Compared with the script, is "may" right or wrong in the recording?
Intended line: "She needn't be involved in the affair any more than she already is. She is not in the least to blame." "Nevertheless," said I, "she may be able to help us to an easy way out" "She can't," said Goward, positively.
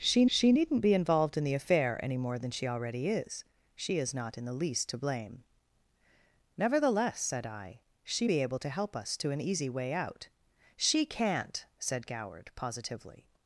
wrong